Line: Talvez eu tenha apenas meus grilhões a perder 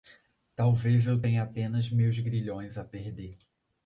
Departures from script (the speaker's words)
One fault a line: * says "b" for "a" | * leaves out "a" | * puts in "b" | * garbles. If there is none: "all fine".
all fine